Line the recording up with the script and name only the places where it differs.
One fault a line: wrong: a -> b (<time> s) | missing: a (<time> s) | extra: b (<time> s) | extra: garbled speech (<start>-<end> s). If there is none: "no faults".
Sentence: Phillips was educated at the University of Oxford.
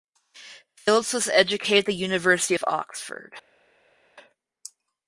no faults